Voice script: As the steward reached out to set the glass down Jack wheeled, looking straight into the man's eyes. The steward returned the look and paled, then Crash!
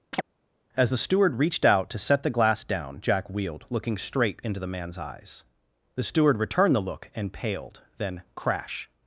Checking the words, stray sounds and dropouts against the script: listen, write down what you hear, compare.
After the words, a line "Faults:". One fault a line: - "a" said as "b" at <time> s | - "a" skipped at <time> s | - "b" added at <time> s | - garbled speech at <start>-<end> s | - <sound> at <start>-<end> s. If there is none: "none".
As the steward reached out to set the glass down Jack wheeled, looking straight into the man's eyes. The steward returned the look and paled, then Crash!
Faults:
- chirp at 0.1-0.2 s